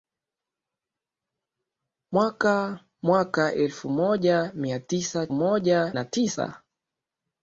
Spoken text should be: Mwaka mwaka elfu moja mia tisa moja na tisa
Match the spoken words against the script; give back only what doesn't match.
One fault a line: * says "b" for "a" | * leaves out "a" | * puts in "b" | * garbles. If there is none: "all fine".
all fine